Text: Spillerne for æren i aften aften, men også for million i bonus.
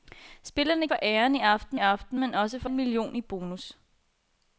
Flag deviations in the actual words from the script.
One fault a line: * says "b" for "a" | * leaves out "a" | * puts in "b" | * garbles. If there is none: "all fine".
all fine